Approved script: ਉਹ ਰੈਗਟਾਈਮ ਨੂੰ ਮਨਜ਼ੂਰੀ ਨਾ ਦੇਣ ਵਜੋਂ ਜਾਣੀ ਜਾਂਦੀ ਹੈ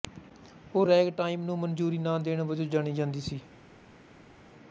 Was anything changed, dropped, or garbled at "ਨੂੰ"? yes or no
no